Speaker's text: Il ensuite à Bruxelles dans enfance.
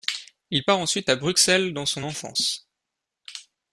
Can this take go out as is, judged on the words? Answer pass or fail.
fail